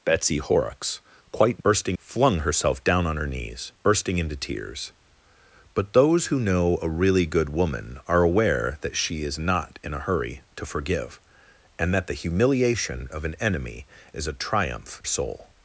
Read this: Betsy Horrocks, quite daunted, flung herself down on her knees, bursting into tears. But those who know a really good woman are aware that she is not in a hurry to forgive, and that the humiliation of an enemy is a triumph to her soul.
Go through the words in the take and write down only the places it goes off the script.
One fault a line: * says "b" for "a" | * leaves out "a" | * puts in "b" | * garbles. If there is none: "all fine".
* says "bursting" for "daunted"
* leaves out "to her"